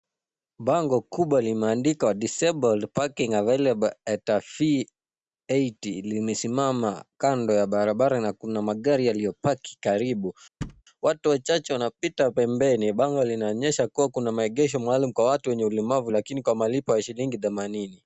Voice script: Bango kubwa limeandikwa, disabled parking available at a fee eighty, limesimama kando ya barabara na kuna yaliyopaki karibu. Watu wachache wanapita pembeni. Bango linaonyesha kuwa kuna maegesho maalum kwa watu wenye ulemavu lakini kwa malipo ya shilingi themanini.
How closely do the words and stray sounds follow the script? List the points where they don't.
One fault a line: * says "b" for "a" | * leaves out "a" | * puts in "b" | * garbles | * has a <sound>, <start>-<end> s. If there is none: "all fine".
* puts in "magari"
* has a thud, 10.6-10.8 s